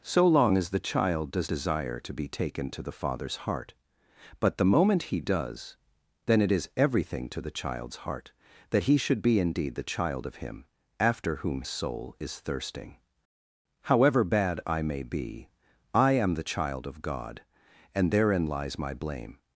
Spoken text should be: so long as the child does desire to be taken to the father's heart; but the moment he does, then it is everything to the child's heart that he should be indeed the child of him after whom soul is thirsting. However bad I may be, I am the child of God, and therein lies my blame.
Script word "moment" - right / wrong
right